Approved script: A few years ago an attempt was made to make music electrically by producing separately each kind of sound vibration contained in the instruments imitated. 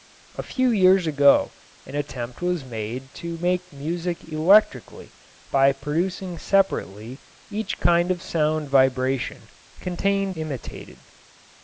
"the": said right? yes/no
no